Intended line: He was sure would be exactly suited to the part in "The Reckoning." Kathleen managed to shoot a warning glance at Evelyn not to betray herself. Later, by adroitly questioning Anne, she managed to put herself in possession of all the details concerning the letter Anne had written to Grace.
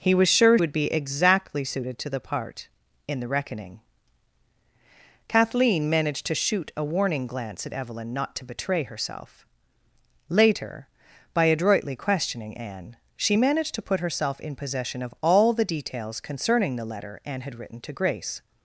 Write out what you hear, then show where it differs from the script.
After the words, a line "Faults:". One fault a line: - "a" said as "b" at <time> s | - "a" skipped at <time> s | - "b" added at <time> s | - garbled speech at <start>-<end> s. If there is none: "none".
He was sure would be exactly suited to the part in "The Reckoning." Kathleen managed to shoot a warning glance at Evelyn not to betray herself. Later, by adroitly questioning Anne, she managed to put herself in possession of all the details concerning the letter Anne had written to Grace.
Faults:
none